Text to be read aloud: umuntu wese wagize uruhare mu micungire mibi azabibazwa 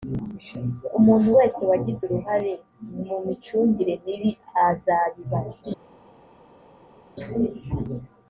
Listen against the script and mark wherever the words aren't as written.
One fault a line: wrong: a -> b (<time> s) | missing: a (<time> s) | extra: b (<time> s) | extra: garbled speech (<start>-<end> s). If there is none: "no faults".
no faults